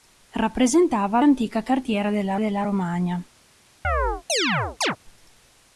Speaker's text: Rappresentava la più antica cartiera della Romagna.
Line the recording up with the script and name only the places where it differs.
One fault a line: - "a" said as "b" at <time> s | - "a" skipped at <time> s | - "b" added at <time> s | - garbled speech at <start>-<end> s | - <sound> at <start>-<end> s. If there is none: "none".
- "la più" skipped at 1.2 s
- "della" added at 2.4 s
- chirp at 3.8-5.0 s